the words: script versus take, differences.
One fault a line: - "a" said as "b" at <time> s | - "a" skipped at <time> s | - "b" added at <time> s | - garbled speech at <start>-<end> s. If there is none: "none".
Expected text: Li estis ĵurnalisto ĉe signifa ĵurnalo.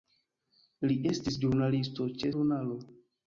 - "signifa" skipped at 2.3 s